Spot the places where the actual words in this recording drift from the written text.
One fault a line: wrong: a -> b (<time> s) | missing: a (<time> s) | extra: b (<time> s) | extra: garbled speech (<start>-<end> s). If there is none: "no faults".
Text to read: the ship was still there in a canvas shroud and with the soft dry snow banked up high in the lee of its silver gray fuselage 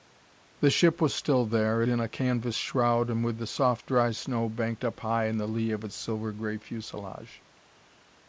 no faults